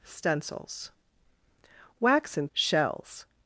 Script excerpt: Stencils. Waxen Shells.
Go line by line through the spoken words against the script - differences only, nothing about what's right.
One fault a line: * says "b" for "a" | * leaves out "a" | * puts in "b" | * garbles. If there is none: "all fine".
all fine